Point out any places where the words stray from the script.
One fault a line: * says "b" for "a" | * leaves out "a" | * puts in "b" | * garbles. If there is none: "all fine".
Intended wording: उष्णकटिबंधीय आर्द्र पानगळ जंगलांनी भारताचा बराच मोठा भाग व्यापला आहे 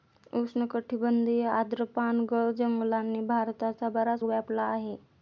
* leaves out "मोठा भाग"